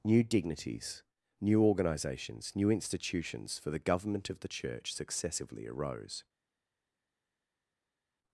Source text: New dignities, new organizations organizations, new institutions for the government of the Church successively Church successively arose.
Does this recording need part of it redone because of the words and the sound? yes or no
yes